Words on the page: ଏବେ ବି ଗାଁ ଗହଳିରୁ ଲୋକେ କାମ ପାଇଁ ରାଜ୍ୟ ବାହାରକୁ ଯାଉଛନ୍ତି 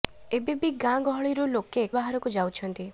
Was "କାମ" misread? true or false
true